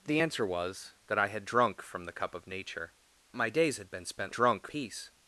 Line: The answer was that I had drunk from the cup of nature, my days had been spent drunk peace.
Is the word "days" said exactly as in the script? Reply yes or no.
yes